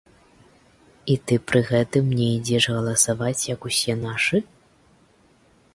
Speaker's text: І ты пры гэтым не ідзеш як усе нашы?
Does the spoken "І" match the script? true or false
true